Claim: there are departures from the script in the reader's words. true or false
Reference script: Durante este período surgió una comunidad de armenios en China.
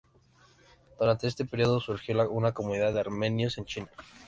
false